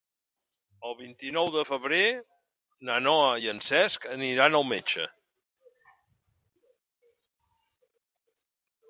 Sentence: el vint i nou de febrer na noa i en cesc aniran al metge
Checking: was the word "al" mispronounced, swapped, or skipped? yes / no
no